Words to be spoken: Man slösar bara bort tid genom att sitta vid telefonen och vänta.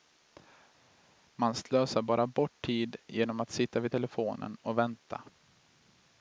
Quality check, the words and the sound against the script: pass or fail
pass